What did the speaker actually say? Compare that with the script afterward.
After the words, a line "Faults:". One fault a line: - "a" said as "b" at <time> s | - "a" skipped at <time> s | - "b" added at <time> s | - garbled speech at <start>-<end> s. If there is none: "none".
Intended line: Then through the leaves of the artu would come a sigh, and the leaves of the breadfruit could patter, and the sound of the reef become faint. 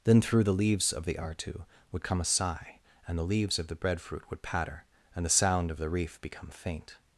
Then through the leaves of the artu would come a sigh, and the leaves of the breadfruit would patter, and the sound of the reef become faint.
Faults:
- "could" said as "would" at 4.3 s